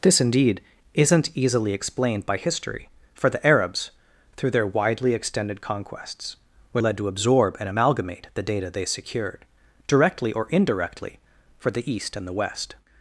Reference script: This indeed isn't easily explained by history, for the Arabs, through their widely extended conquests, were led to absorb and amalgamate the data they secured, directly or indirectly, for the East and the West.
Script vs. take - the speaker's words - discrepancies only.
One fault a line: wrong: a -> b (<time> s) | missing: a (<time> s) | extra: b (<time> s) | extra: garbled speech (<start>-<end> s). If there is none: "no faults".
no faults